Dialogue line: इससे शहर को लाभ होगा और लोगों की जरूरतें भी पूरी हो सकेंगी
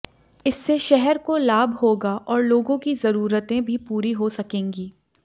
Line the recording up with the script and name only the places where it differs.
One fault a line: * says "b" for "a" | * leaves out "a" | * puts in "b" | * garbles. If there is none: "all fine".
all fine